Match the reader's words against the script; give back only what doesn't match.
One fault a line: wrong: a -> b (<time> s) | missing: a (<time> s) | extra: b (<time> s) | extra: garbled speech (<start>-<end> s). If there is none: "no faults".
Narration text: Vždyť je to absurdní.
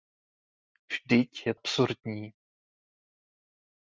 missing: to (1.5 s)